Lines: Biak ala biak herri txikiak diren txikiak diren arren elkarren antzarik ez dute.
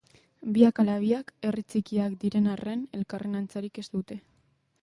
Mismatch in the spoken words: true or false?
true